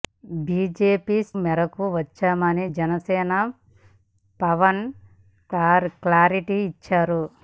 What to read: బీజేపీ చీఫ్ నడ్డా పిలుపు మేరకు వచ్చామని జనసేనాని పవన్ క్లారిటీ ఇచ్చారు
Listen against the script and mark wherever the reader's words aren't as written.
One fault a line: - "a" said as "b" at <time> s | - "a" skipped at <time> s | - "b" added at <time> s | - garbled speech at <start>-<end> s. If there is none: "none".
- "చీఫ్ నడ్డా పిలుపు" skipped at 1.2 s